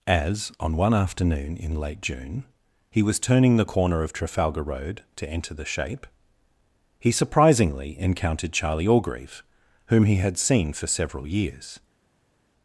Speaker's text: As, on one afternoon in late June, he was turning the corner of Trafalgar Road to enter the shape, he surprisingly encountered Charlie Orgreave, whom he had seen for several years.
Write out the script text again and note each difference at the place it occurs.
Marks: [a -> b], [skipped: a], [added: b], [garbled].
As, on one afternoon in late June, he was turning the corner of Trafalgar Road to enter the shape, he surprisingly encountered Charlie Orgreave, whom he had seen for several years.